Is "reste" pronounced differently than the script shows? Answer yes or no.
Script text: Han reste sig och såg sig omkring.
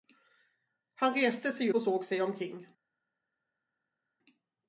no